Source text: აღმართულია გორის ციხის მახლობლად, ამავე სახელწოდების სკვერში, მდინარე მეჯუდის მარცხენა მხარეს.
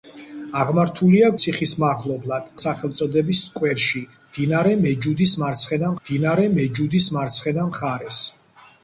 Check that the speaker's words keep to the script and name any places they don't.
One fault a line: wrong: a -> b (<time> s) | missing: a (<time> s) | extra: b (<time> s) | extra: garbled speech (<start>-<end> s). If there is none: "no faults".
missing: გორის (1.3 s)
missing: ამავე (2.5 s)
extra: მდინარე მეჯუდის მარცხენა (6.0 s)